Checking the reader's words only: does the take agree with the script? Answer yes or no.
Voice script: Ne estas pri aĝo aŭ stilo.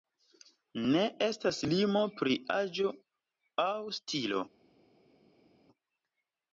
no